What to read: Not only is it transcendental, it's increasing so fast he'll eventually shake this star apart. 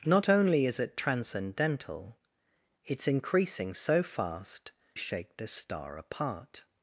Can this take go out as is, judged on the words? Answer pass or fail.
fail